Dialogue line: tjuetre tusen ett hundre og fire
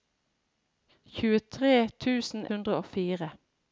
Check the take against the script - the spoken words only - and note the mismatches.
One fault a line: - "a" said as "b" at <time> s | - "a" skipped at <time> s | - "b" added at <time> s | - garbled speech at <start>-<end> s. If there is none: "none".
- "ett" skipped at 2.5 s